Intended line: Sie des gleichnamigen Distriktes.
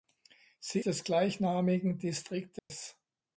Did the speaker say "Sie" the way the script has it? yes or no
yes